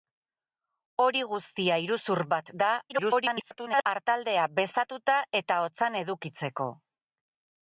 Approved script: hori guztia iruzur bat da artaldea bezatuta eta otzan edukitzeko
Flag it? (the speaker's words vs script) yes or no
yes